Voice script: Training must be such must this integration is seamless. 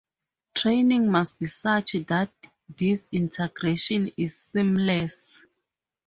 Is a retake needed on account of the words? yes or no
yes